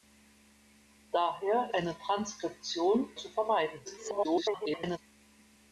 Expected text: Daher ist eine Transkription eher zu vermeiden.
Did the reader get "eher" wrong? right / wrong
wrong